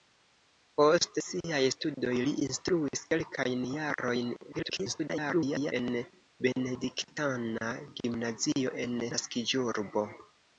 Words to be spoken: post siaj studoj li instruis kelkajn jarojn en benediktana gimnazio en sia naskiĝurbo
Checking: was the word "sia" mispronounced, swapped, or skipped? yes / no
yes